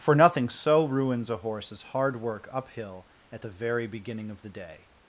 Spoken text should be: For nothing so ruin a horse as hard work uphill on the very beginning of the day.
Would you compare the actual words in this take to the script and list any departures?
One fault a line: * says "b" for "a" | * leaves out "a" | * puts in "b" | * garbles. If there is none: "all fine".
* says "ruins" for "ruin"
* says "at" for "on"